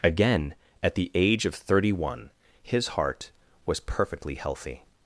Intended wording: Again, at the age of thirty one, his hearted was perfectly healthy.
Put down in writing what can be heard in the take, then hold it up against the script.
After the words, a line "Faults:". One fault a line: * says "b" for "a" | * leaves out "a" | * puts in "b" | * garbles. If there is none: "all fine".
Again, at the age of thirty one, his heart was perfectly healthy.
Faults:
* says "heart" for "hearted"